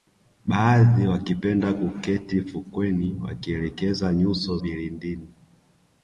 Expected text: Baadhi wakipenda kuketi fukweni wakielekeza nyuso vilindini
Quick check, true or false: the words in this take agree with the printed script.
true